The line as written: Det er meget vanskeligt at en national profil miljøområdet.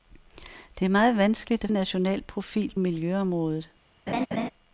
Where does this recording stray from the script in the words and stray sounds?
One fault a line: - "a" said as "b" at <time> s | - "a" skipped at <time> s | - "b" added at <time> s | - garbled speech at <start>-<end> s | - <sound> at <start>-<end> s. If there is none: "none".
- laugh at 4.1-4.5 s